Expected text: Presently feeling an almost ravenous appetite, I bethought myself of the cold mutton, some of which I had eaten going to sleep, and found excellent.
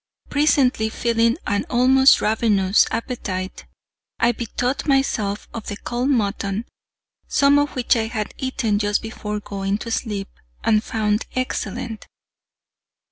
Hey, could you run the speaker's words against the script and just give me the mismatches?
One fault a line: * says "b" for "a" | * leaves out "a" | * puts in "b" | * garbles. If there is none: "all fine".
* puts in "just before"